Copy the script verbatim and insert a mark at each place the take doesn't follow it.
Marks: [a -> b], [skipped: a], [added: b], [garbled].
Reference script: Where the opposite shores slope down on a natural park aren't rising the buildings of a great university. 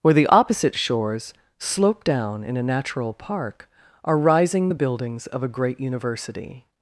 Where the opposite shores slope down [on -> in] a natural park [aren't -> are] rising the buildings of a great university.